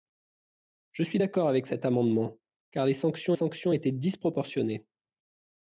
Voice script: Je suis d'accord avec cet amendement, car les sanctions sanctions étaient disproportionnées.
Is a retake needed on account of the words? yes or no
no